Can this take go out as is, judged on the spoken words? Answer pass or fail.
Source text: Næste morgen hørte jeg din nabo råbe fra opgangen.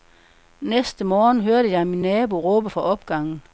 fail